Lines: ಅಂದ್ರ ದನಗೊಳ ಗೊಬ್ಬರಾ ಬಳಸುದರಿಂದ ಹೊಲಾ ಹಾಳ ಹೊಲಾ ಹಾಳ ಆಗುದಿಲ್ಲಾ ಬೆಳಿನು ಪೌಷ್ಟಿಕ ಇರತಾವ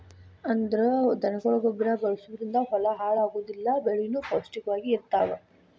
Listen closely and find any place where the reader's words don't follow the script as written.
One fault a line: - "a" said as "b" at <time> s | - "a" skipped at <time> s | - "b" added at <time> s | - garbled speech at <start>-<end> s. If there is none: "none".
- "ಹೊಲಾ ಹಾಳ" skipped at 3.2 s
- "ವಾಗಿ" added at 4.7 s